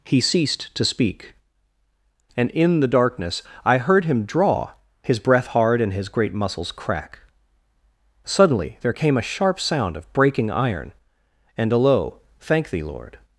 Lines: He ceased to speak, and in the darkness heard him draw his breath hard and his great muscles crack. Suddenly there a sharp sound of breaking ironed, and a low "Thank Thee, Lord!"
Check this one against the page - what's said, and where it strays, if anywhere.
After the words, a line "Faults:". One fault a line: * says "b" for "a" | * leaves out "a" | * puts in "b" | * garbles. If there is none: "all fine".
He ceased to speak, and in the darkness I heard him draw his breath hard and his great muscles crack. Suddenly there came a sharp sound of breaking iron, and a low "Thank Thee, Lord!"
Faults:
* puts in "I"
* puts in "came"
* says "iron" for "ironed"